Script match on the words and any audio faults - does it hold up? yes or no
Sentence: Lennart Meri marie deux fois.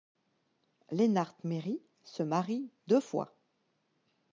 no